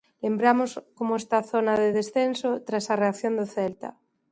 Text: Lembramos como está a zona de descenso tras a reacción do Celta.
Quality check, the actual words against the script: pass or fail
pass